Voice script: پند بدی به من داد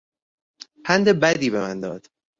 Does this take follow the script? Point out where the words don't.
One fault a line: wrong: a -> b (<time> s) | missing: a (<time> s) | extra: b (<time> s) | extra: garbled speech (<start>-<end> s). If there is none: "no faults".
no faults